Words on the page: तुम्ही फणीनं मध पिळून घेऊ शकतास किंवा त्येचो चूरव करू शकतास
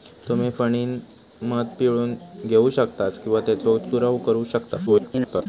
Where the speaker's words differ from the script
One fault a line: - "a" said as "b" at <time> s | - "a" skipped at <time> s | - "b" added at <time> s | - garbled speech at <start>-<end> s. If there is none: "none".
- garbled speech at 4.9-5.5 s